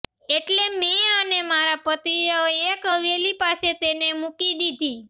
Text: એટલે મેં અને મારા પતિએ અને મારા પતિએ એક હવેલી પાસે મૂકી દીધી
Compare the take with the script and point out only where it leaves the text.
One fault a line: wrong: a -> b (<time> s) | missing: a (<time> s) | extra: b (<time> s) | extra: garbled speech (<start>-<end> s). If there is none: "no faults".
missing: અને મારા પતિએ (2.4 s)
extra: તેને (3.8 s)